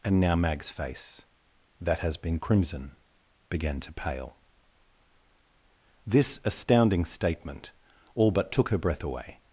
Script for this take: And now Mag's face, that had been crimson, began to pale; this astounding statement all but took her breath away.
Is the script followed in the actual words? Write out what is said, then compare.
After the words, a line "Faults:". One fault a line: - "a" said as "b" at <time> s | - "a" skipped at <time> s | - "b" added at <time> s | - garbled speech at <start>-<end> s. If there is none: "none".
And now Mag's face, that has been crimson, began to pale; this astounding statement all but took her breath away.
Faults:
- "had" said as "has" at 2.0 s